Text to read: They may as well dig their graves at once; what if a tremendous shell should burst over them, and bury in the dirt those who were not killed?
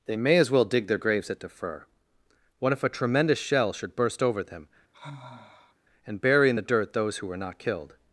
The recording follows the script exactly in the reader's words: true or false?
false